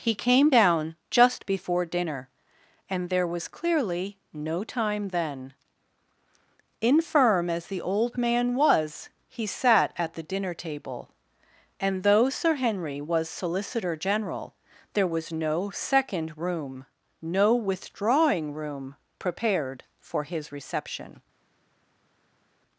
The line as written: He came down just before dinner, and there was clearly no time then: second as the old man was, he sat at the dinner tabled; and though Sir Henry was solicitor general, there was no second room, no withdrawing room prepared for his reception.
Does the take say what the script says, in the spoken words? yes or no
no